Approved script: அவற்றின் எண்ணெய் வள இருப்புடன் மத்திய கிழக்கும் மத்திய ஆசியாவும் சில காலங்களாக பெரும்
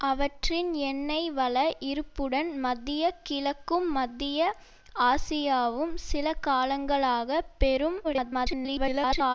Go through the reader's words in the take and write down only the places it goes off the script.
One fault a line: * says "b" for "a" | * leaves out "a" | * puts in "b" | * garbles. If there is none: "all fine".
* garbles